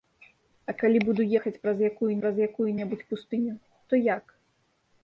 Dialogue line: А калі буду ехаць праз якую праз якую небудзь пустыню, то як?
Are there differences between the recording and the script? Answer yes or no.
no